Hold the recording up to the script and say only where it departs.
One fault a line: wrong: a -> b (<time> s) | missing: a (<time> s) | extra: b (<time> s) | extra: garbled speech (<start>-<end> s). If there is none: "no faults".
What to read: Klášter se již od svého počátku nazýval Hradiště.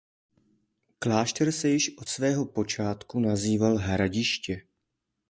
no faults